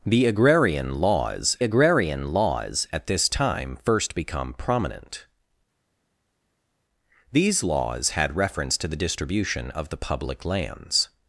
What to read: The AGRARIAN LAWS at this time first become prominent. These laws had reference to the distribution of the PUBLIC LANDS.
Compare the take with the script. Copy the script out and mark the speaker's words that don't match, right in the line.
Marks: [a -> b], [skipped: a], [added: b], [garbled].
The AGRARIAN LAWS [added: AGRARIAN LAWS] at this time first become prominent. These laws had reference to the distribution of the PUBLIC LANDS.